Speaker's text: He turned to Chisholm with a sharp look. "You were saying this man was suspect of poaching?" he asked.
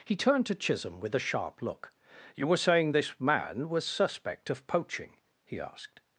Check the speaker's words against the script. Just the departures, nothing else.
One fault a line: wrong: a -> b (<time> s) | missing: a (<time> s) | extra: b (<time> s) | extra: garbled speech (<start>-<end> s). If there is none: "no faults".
no faults